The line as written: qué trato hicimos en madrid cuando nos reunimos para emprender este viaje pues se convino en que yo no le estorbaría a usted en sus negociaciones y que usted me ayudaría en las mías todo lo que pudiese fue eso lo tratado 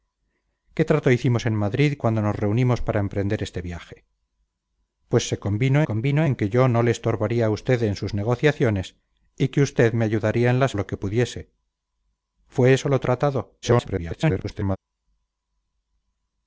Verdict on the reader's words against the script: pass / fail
fail